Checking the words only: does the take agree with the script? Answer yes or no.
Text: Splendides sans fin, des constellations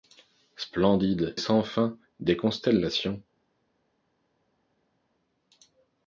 yes